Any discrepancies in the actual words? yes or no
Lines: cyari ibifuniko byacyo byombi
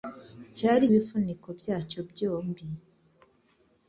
no